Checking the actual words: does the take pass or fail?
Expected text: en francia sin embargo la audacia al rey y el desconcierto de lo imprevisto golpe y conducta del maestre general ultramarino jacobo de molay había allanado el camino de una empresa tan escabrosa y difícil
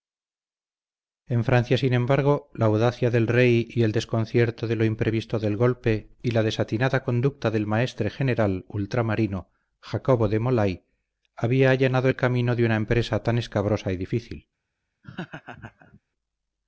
fail